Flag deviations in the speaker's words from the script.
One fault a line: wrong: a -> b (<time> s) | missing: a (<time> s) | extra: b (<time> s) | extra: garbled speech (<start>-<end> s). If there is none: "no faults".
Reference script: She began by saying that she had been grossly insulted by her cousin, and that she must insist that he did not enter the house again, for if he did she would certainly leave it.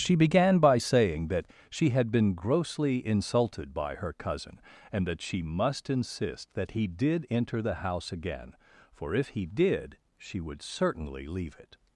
missing: not (7.3 s)